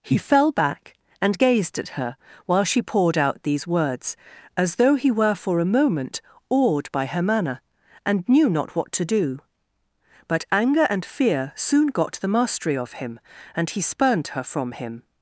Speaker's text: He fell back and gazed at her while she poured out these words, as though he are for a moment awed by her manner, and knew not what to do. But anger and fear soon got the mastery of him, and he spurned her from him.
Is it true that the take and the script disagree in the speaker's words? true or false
true